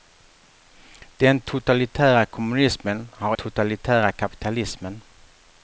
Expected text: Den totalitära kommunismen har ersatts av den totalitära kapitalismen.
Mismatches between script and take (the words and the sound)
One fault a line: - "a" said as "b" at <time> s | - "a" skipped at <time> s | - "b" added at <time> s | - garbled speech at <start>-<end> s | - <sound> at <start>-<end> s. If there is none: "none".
- "ersatts av den" skipped at 3.4 s